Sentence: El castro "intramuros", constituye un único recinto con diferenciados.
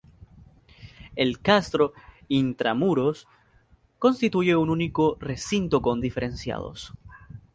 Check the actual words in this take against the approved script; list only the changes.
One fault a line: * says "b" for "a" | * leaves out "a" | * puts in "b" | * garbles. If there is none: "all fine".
all fine